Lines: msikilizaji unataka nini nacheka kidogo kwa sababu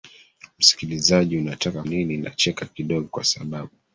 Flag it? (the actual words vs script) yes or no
no